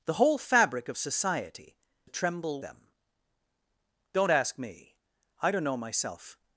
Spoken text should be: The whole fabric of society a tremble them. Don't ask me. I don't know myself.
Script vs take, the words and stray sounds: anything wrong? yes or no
no